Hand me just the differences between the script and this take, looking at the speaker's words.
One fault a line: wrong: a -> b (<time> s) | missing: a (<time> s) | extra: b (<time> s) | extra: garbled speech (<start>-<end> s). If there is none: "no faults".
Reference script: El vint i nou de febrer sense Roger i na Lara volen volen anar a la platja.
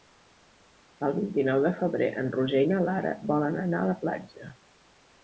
wrong: sense -> en (2.2 s)
missing: volen (3.6 s)